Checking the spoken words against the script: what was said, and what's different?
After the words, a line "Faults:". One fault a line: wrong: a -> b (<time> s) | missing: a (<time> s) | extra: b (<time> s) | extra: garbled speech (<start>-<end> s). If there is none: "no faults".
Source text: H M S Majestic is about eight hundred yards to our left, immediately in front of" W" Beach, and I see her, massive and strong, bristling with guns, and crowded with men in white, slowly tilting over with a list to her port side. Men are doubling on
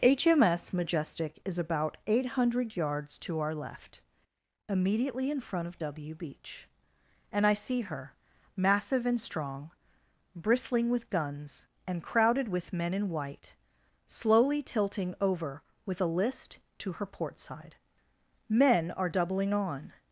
H M S Majestic is about eight hundred yards to our left, immediately in front of" W" Beach, and I see her, massive and strong, bristling with guns, and crowded with men in white, slowly tilting over with a list to her port side. Men are doubling on
Faults:
no faults